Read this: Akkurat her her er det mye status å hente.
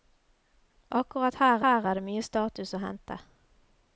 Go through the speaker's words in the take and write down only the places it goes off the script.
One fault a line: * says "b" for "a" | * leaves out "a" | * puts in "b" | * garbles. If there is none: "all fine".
all fine